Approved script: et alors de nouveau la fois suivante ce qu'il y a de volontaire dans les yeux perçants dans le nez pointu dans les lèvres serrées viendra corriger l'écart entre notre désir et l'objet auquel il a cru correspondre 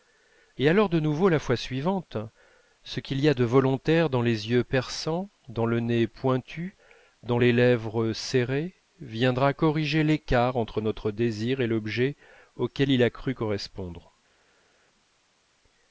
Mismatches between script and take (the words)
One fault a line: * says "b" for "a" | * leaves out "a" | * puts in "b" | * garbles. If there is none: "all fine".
all fine